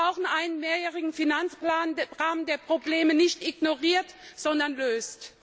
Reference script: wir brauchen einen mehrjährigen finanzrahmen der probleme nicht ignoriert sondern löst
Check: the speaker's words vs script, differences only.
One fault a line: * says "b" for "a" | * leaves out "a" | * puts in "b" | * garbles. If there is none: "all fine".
all fine